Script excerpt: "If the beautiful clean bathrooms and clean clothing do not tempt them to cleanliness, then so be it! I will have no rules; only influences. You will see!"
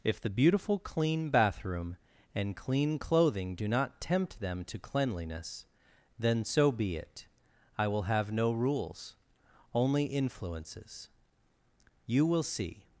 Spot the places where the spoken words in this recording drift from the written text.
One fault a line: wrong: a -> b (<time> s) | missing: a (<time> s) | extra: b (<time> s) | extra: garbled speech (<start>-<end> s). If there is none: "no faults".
wrong: bathrooms -> bathroom (1.3 s)